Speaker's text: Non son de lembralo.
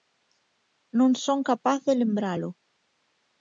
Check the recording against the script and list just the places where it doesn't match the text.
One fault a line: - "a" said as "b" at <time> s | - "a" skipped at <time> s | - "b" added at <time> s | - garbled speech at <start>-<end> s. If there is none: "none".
- "capaz" added at 1.5 s